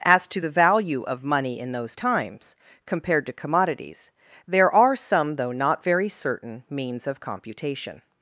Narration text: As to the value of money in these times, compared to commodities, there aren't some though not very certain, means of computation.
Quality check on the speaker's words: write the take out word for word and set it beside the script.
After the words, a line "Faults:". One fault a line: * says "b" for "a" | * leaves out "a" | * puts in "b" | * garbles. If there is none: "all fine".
As to the value of money in those times, compared to commodities, there are some though not very certain, means of computation.
Faults:
* says "those" for "these"
* says "are" for "aren't"